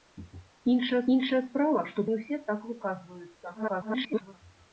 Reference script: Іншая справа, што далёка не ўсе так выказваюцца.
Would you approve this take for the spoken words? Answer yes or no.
no